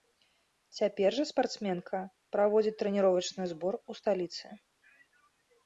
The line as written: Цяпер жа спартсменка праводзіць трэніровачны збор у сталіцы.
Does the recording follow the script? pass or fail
pass